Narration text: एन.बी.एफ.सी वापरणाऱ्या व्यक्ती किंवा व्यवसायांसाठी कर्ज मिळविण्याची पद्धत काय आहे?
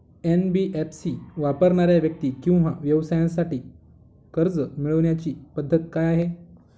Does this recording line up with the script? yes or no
yes